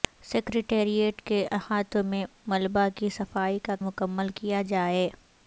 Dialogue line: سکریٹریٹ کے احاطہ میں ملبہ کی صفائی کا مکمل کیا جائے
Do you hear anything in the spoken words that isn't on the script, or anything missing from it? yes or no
no